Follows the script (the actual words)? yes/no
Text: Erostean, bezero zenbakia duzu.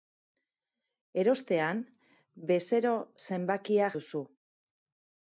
yes